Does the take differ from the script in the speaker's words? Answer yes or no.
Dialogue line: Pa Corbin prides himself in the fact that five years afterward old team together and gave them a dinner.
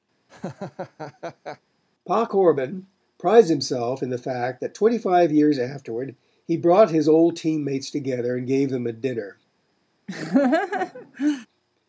yes